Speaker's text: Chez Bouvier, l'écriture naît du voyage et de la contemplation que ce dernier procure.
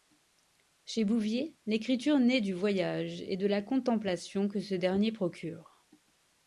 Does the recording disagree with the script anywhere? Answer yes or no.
no